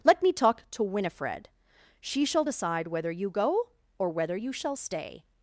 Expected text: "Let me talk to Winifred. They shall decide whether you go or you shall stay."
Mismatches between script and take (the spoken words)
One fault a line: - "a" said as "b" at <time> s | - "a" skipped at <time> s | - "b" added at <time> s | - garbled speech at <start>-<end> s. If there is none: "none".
- "They" said as "She" at 2.0 s
- "whether" added at 4.1 s